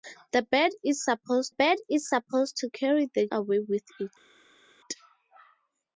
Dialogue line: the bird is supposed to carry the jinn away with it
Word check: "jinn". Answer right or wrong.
wrong